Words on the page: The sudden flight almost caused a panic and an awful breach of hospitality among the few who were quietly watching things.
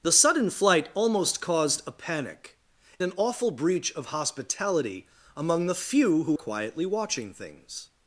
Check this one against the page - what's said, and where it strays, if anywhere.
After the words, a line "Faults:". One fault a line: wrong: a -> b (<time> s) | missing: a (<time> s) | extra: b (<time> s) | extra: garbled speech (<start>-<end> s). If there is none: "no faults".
The sudden flight almost caused a panic an awful breach of hospitality among the few who quietly watching things.
Faults:
missing: and (2.6 s)
missing: were (6.3 s)